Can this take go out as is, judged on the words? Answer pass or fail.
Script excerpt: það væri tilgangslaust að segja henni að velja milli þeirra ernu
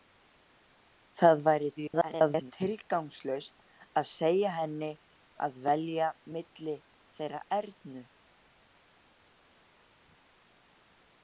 fail